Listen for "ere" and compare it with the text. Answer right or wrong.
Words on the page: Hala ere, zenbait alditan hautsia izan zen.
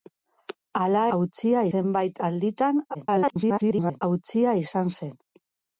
wrong